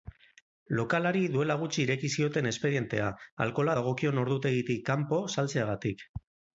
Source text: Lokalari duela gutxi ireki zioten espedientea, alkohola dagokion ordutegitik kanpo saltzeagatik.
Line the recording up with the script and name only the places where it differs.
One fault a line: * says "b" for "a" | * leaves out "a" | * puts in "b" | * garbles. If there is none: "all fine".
all fine